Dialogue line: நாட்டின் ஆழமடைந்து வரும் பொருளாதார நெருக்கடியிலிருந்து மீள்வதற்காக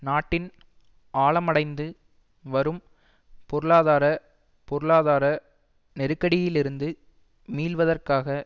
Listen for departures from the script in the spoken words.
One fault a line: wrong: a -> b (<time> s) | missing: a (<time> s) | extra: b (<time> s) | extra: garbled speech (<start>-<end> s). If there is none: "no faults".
extra: பொருளாதார (4.7 s)